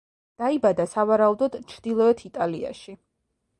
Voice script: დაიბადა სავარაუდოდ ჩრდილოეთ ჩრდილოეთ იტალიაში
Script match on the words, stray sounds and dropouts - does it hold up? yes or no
no